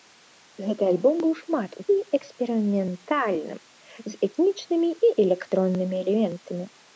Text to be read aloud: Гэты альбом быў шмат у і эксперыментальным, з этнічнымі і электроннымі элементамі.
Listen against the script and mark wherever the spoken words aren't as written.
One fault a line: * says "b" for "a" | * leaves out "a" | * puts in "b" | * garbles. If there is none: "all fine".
all fine